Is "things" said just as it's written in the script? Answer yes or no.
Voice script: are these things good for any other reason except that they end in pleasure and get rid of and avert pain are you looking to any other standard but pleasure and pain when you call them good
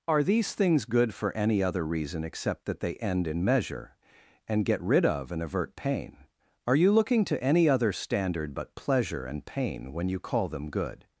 yes